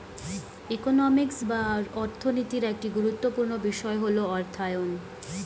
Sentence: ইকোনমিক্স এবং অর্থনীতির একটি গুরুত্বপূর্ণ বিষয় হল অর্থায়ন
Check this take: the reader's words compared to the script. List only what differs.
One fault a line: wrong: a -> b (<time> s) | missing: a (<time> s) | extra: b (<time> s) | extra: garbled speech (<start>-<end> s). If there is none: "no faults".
wrong: এবং -> বা (1.5 s)